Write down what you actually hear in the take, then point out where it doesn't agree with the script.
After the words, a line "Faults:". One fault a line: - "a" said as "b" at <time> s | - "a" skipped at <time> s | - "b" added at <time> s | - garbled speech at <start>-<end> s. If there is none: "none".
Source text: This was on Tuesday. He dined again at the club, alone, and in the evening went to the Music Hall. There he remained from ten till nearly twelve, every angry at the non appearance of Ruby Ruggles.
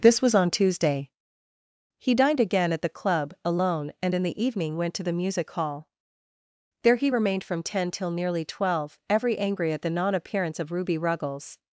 This was on Tuesday. He dined again at the club, alone, and in the evening went to the Music Hall. There he remained from ten till nearly twelve, every angry at the non appearance of Ruby Ruggles.
Faults:
none